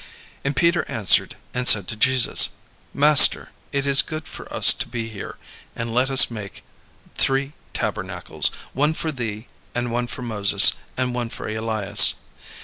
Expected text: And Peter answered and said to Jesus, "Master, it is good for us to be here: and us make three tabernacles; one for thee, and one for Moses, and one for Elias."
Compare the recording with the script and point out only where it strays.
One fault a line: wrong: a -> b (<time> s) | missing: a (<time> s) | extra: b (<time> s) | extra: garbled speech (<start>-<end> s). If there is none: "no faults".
extra: let (5.9 s)